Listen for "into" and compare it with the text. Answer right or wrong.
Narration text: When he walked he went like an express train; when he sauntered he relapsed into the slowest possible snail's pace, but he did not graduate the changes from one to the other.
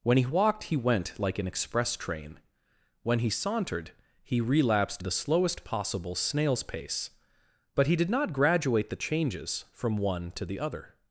wrong